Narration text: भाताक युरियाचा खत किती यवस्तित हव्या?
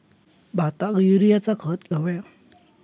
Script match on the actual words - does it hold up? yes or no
no